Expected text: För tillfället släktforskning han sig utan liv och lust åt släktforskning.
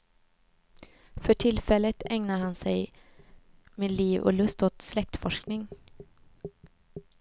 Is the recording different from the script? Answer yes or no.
yes